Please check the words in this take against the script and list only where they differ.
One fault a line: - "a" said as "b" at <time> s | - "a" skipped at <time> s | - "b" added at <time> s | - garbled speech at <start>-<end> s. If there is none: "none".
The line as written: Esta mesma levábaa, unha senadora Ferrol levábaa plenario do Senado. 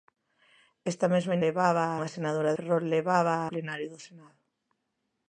none